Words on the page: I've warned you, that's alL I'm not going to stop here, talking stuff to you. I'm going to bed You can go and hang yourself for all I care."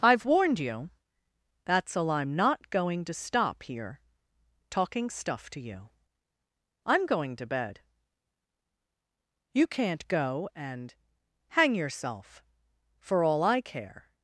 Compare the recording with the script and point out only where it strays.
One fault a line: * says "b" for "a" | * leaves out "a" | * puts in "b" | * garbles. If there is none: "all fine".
* says "can't" for "can"